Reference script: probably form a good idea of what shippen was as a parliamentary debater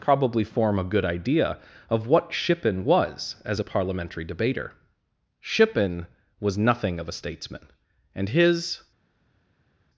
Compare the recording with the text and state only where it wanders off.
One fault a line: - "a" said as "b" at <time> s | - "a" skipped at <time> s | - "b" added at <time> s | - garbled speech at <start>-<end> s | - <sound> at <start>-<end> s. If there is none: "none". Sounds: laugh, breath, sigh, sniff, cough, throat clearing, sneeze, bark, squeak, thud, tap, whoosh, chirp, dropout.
- "shippen was nothing of a statesman and his" added at 5.4 s